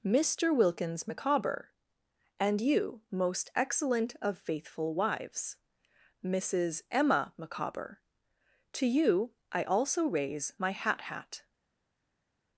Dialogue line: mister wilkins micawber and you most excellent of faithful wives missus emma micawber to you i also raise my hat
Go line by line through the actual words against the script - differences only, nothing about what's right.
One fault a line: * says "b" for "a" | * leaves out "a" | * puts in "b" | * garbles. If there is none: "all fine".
* puts in "hat"